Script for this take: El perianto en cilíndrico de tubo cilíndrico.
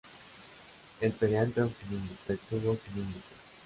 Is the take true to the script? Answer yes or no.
yes